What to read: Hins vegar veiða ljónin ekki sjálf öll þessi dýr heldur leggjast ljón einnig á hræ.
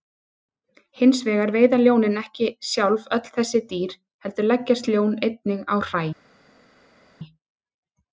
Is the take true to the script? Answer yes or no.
yes